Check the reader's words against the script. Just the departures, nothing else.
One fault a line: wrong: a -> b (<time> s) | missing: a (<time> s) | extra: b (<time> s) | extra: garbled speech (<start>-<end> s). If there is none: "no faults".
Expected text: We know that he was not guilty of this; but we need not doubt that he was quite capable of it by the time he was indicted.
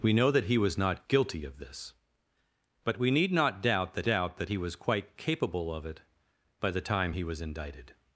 extra: doubt that (4.0 s)